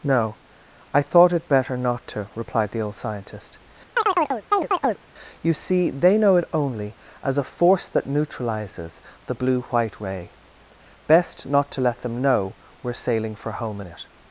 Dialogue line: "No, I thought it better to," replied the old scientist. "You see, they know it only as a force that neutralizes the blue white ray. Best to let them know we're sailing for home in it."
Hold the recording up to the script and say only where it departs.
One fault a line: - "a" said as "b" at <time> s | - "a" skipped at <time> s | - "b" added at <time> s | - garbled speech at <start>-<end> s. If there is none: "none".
- "not" added at 1.8 s
- "not" added at 11.5 s